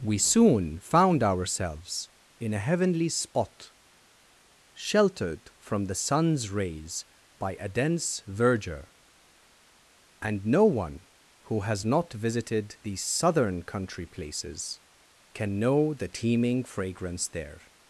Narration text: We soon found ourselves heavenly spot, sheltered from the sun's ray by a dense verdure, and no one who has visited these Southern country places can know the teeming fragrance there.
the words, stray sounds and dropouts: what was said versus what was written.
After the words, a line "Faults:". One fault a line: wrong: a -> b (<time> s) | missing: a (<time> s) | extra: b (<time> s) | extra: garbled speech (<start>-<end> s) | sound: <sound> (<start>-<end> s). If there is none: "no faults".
We soon found ourselves in a heavenly spot, sheltered from the sun's rays by a dense verdure, and no one who has not visited these Southern country places can know the teeming fragrance there.
Faults:
extra: in a (2.4 s)
wrong: ray -> rays (6.5 s)
extra: not (11.8 s)